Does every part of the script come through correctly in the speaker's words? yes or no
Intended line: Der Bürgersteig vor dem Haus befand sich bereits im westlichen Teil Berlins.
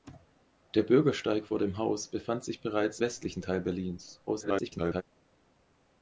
no